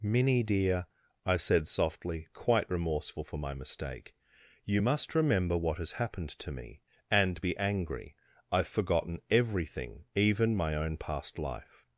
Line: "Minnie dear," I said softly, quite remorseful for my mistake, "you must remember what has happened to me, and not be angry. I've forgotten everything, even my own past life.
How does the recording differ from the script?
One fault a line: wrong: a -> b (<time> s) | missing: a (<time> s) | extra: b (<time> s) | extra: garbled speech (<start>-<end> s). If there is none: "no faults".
missing: not (7.4 s)